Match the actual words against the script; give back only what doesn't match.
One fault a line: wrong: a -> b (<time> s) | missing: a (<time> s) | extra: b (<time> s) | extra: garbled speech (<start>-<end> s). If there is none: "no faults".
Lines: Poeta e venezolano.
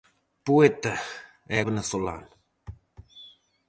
no faults